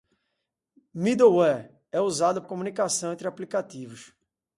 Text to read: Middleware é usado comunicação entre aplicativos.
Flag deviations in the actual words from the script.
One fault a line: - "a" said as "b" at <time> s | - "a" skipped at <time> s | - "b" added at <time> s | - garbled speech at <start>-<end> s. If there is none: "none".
none